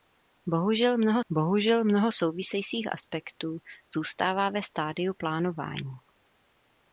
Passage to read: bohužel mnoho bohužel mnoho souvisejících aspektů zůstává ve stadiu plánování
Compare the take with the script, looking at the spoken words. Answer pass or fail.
pass